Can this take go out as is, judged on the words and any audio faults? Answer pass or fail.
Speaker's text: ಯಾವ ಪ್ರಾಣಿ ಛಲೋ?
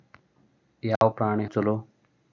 fail